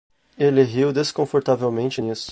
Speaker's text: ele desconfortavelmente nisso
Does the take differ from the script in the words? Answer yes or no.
yes